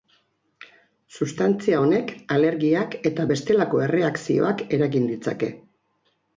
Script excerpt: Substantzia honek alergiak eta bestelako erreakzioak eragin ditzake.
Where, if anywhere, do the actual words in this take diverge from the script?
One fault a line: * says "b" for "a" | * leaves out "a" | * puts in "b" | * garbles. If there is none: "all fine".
all fine